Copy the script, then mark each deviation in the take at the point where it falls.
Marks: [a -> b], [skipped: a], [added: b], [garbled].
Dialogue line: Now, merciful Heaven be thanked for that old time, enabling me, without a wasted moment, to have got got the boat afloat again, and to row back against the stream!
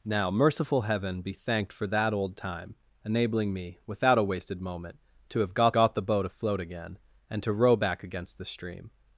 Now, merciful Heaven be thanked for that old time, enabling me, without a wasted moment, to have got got the boat afloat again, and to row back against the stream!